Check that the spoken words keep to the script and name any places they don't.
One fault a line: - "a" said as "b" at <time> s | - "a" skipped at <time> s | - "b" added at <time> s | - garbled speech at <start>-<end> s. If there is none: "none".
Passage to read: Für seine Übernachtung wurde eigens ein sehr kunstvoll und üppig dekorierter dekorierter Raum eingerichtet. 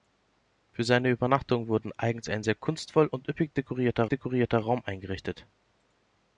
none